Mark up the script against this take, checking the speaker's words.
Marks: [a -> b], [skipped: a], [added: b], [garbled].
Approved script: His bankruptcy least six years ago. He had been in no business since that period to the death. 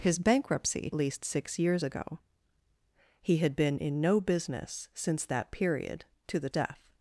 His bankruptcy least six years ago. He had been in no business since that period to the death.